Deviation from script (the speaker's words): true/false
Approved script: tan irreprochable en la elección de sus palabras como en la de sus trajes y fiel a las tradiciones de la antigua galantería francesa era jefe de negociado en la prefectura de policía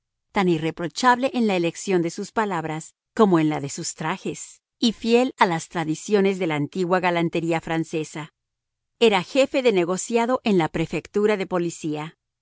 false